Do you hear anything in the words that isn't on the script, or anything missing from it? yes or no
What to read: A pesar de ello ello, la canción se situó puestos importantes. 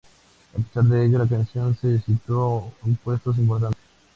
yes